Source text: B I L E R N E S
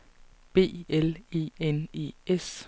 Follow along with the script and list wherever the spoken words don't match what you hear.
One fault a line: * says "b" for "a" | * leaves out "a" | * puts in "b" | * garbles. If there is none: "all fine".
* leaves out "I"
* leaves out "R"